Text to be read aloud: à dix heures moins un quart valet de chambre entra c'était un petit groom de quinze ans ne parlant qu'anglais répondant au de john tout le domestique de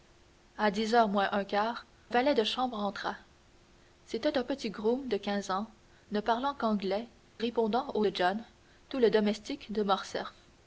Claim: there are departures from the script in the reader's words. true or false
false